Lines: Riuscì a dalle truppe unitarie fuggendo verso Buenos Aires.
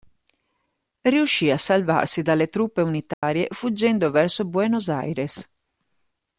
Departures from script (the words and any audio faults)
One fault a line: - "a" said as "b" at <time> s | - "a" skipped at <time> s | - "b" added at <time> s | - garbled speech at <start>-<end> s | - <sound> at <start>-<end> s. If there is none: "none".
- "salvarsi" added at 1.6 s
- dropout at 3.1-3.2 s